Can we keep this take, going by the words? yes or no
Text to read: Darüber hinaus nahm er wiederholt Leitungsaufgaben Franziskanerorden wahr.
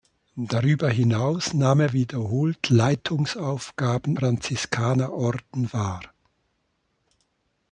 yes